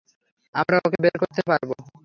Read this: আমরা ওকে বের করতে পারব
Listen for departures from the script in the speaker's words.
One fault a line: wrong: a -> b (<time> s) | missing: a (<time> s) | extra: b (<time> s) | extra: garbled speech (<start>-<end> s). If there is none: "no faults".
no faults